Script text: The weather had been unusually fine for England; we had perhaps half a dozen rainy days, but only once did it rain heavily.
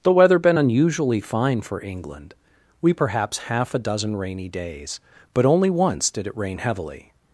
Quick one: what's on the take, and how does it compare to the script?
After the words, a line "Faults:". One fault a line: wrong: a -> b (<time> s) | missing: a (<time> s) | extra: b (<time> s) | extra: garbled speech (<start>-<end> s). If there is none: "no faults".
The weather been unusually fine for England; we perhaps half a dozen rainy days, but only once did it rain heavily.
Faults:
missing: had (0.4 s)
missing: had (2.9 s)